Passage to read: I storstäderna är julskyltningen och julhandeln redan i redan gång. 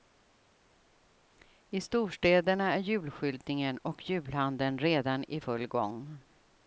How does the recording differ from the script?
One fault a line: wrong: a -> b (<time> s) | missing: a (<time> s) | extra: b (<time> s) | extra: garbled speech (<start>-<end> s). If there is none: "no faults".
wrong: redan -> full (5.4 s)